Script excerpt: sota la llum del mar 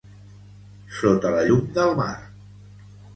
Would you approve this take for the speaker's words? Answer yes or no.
yes